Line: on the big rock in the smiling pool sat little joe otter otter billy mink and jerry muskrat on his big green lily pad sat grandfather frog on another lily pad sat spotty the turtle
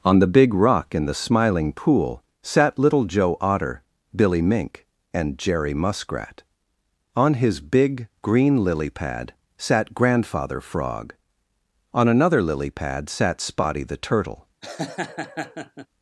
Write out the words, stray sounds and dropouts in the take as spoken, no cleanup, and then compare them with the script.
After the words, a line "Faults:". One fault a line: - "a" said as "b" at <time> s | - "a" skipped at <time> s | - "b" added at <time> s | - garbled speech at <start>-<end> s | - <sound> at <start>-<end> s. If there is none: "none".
on the big rock in the smiling pool sat little joe otter billy mink and jerry muskrat on his big green lily pad sat grandfather frog on another lily pad sat spotty the turtle
Faults:
- "otter" skipped at 3.8 s
- laugh at 14.6-15.9 s